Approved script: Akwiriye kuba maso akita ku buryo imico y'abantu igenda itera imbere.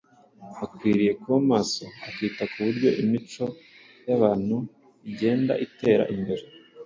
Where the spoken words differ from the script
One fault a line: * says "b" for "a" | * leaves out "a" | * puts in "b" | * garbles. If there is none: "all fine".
all fine